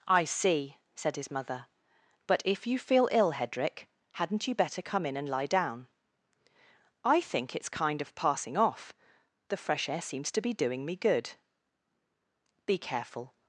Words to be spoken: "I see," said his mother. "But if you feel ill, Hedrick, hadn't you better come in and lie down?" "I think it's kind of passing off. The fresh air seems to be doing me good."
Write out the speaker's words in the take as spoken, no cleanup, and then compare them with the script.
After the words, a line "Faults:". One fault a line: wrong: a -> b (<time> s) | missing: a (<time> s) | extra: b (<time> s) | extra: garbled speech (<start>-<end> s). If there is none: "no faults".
"I see," said his mother. "But if you feel ill, Hedrick, hadn't you better come in and lie down?" "I think it's kind of passing off. The fresh air seems to be doing me good." "Be careful
Faults:
extra: Be careful (12.7 s)